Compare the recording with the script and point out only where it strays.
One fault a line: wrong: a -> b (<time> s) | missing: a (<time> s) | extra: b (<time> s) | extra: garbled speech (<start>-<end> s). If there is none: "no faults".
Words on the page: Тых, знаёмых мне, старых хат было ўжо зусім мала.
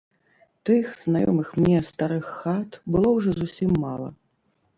no faults